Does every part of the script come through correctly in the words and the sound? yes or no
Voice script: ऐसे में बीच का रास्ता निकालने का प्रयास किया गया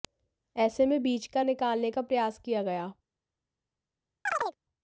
no